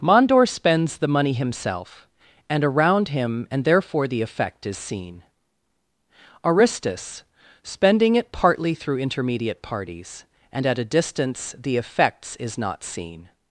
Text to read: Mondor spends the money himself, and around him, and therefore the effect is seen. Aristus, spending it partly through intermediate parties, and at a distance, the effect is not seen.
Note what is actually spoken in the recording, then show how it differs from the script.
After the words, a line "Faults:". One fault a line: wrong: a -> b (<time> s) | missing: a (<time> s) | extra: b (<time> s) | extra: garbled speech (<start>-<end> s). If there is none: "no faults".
Mondor spends the money himself, and around him, and therefore the effect is seen. Aristus, spending it partly through intermediate parties, and at a distance, the effects is not seen.
Faults:
wrong: effect -> effects (11.8 s)